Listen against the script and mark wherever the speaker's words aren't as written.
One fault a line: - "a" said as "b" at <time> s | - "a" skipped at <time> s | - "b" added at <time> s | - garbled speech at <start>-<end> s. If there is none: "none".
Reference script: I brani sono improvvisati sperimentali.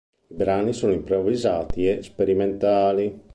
- "e" added at 1.9 s